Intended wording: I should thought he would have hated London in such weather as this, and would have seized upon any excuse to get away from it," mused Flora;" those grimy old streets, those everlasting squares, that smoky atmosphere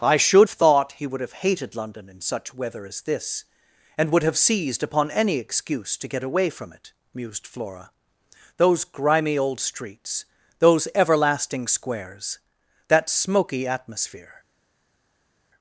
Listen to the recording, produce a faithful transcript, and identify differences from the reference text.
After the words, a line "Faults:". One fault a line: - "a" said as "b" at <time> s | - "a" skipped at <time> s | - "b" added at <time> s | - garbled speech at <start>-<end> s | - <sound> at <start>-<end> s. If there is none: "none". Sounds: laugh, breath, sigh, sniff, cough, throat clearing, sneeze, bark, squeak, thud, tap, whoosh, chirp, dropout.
I should thought he would have hated London in such weather as this, and would have seized upon any excuse to get away from it," mused Flora;" those grimy old streets, those everlasting squares, that smoky atmosphere
Faults:
none